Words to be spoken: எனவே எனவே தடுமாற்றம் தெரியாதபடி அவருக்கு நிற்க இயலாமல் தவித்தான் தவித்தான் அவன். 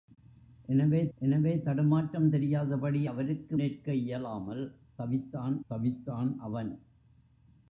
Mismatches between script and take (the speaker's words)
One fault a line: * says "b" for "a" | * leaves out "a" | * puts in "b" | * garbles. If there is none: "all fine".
all fine